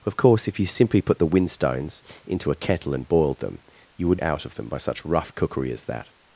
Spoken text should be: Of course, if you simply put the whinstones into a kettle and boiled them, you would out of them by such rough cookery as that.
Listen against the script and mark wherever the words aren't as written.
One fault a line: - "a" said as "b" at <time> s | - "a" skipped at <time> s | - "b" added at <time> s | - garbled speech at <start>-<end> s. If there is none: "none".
none